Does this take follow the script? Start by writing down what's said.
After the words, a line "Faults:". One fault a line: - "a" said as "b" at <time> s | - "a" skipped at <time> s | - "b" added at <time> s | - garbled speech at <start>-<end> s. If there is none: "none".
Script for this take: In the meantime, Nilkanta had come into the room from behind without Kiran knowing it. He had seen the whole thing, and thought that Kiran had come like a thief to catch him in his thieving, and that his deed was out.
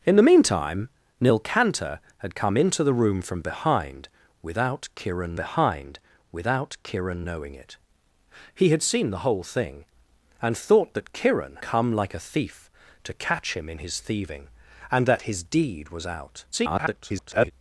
In the meantime, Nilkanta had come into the room from behind without Kiran behind without Kiran knowing it. He had seen the whole thing, and thought that Kiran come like a thief to catch him in his thieving, and that his deed was out. [garbled]
Faults:
- "behind without Kiran" added at 5.3 s
- "had" skipped at 11.6 s
- garbled speech at 16.5-17.5 s